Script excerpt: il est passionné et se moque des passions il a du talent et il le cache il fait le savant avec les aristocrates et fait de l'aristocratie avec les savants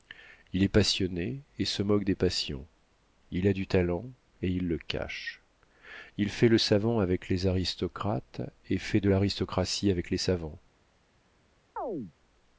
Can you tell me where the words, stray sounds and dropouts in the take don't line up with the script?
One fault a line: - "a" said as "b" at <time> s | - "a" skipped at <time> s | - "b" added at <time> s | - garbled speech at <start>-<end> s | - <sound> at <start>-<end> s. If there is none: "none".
- chirp at 11.8-12.1 s